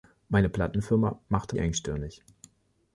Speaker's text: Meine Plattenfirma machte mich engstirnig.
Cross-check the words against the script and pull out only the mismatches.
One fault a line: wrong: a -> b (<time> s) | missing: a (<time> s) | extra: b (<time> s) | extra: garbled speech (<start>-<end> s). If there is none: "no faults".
missing: mich (1.6 s)